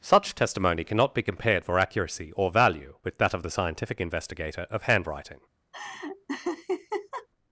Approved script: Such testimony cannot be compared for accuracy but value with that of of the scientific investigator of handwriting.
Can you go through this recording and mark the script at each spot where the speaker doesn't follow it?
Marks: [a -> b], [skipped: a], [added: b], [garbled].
Such testimony cannot be compared for accuracy [but -> or] value with that of [skipped: of] the scientific investigator of handwriting.